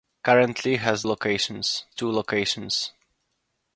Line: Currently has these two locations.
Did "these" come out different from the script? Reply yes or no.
yes